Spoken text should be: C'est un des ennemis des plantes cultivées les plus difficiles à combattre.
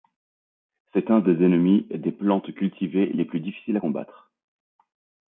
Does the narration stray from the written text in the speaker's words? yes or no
no